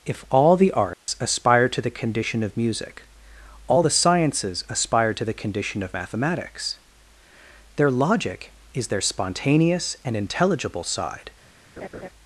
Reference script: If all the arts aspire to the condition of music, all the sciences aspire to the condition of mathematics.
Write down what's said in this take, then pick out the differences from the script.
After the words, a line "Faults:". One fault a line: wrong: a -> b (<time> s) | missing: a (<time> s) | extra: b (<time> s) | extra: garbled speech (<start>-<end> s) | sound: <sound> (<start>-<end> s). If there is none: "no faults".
If all the arts aspire to the condition of music, all the sciences aspire to the condition of mathematics. Their logic is their spontaneous and intelligible side
Faults:
sound: dropout (0.9-1.1 s)
extra: Their logic is their spontaneous and intelligible side (7.8 s)
sound: laugh (11.8-12.1 s)